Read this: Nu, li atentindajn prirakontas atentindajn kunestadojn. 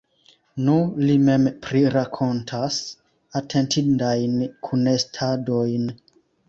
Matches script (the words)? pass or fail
fail